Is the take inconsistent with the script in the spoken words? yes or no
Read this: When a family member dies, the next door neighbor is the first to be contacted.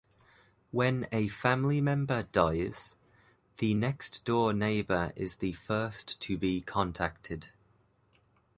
no